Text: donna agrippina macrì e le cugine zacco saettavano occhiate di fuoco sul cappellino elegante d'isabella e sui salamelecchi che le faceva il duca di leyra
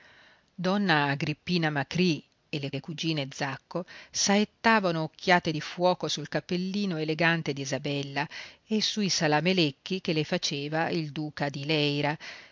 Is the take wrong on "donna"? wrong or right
right